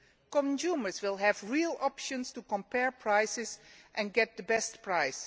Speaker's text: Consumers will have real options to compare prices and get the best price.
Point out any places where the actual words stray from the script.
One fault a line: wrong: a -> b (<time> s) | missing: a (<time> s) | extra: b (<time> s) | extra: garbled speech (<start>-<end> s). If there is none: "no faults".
no faults